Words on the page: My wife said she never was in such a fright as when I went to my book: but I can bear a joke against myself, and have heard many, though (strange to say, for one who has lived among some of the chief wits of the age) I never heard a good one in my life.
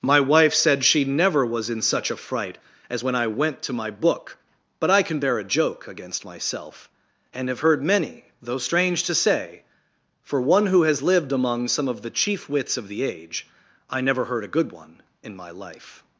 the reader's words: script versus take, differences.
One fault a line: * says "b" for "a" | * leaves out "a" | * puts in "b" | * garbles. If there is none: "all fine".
all fine